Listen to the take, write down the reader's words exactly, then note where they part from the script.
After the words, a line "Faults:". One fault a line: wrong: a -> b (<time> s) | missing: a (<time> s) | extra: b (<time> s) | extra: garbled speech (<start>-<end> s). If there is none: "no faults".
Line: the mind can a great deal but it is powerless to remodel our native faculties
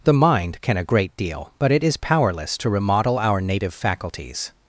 the mind can a great deal but it is powerless to remodel our native faculties
Faults:
no faults